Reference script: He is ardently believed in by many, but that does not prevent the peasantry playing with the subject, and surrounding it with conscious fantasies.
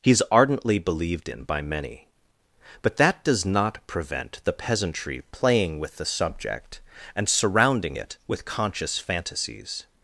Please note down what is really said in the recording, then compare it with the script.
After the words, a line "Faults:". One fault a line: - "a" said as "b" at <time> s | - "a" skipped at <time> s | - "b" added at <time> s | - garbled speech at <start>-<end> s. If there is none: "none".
He is ardently believed in by many, but that does not prevent the peasantry playing with the subject, and surrounding it with conscious fantasies.
Faults:
none